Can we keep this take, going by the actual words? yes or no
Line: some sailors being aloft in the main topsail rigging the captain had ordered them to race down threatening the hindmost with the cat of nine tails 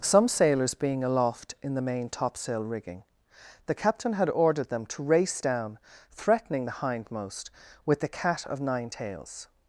yes